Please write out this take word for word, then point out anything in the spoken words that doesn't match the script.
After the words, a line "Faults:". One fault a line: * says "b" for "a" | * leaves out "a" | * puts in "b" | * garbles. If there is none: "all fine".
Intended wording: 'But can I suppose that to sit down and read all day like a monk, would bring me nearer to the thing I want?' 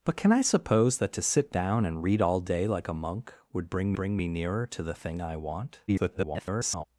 'But can I suppose that to sit down and read all day like a monk, would bring bring me nearer to the thing I want?' [garbled]
Faults:
* puts in "bring"
* garbles